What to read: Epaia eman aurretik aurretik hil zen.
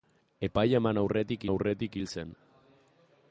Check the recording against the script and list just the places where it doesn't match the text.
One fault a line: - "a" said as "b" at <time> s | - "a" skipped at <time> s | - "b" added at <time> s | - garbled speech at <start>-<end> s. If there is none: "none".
none